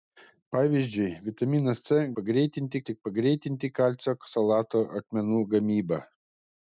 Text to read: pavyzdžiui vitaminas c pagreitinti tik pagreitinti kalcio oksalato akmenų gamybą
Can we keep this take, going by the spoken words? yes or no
yes